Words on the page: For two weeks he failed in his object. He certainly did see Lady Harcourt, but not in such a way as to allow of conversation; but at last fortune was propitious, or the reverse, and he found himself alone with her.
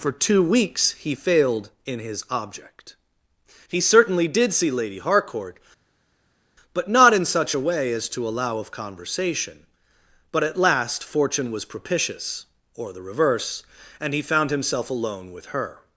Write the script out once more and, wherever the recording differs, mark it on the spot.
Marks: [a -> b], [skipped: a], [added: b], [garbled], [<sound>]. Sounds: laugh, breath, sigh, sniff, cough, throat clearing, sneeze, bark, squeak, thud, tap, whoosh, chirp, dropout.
For two weeks he failed in his object. He certainly did see Lady Harcourt, but not in such a way as to allow of conversation; but at last fortune was propitious, or the reverse, and he found himself alone with her.